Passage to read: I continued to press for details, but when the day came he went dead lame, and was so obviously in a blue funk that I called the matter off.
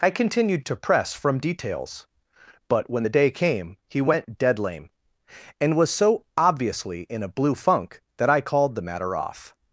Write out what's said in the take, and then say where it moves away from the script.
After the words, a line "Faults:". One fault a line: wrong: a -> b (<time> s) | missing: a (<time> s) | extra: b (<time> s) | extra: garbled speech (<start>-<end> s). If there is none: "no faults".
I continued to press from details, but when the day came he went dead lame, and was so obviously in a blue funk that I called the matter off.
Faults:
wrong: for -> from (1.1 s)